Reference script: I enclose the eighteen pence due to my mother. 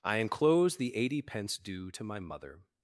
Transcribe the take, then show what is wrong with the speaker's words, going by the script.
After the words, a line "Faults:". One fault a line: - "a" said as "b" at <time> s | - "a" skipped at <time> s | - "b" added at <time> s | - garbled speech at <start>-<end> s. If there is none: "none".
I enclose the eighty pence due to my mother.
Faults:
- "eighteen" said as "eighty" at 0.9 s